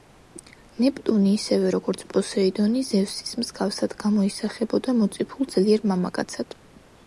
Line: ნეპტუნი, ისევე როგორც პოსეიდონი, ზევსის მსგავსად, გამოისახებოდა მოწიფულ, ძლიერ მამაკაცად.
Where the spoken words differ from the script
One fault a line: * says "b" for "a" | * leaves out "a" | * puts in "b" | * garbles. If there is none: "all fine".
all fine